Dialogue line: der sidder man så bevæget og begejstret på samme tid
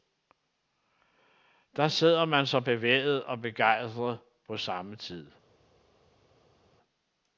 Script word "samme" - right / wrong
right